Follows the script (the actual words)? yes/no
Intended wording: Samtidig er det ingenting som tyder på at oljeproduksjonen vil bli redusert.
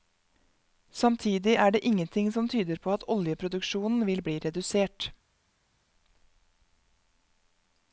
yes